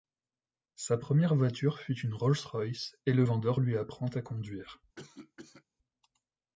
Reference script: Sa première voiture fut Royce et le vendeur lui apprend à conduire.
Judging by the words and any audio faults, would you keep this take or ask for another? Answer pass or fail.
fail